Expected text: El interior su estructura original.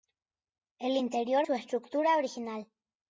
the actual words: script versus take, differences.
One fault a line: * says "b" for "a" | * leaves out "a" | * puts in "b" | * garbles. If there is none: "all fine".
all fine